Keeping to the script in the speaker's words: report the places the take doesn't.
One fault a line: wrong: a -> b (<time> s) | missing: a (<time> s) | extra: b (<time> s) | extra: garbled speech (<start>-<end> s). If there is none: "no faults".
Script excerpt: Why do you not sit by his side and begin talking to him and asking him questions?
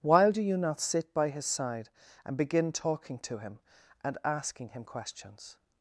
wrong: Why -> While (0.0 s)